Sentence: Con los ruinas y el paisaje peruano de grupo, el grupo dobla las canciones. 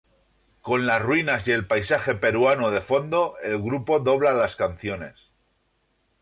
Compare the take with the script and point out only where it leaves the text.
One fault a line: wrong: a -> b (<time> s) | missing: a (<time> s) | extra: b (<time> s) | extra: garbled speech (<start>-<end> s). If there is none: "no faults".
wrong: los -> las (0.9 s)
wrong: grupo -> fondo (2.8 s)